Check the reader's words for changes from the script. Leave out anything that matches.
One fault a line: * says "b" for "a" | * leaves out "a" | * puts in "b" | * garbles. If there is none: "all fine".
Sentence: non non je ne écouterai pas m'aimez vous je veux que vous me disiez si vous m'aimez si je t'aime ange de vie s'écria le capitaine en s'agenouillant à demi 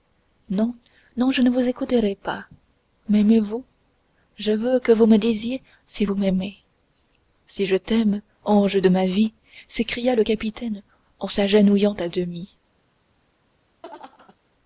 * puts in "vous"
* puts in "ma"